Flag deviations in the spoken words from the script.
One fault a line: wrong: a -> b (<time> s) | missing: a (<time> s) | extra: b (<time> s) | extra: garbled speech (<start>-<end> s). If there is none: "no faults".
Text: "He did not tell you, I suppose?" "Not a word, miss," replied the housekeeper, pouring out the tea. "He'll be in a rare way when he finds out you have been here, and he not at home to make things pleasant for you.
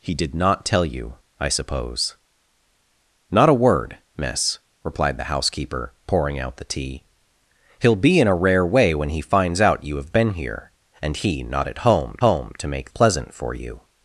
extra: home (12.2 s)
missing: things (12.9 s)